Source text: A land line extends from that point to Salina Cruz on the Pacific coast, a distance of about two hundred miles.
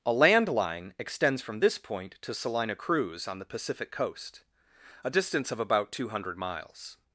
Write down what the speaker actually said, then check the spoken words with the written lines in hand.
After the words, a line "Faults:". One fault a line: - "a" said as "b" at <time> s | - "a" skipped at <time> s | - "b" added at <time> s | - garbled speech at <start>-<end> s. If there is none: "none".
A land line extends from this point to Salina Cruz on the Pacific coast, a distance of about two hundred miles.
Faults:
- "that" said as "this" at 1.6 s